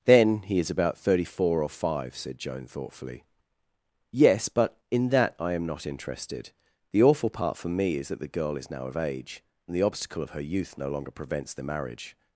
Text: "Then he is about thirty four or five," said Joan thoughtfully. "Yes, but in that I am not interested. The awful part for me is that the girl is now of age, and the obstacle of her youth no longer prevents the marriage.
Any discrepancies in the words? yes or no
no